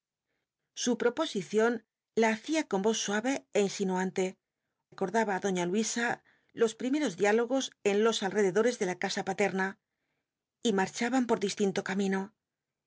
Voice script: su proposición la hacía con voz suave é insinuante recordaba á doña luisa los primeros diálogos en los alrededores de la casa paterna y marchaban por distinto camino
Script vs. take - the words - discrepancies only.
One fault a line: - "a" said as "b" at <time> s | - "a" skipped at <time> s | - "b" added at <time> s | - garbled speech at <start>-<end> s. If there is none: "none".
none